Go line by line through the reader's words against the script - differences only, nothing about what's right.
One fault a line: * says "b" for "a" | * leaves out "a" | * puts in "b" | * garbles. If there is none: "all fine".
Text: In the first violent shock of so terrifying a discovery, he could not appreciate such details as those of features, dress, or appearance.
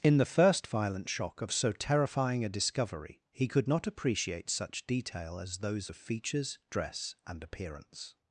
* says "detail" for "details"
* says "and" for "or"